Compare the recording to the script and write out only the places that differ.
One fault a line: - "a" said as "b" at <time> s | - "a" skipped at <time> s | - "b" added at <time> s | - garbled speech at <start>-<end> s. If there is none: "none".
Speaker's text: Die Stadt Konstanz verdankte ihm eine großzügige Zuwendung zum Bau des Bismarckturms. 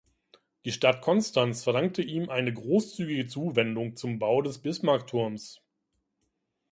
none